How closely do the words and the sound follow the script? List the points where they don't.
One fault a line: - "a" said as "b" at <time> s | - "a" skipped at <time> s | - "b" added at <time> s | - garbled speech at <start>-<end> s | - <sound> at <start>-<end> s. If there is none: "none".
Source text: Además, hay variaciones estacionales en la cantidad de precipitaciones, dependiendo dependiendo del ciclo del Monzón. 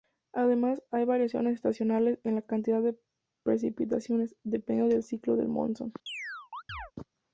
- "dependiendo" skipped at 4.9 s
- chirp at 6.1-6.9 s